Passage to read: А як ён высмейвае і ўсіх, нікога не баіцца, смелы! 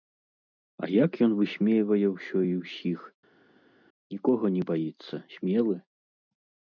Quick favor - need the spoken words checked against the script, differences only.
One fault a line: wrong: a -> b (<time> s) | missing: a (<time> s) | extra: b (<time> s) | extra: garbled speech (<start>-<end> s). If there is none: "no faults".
extra: ўсё (2.1 s)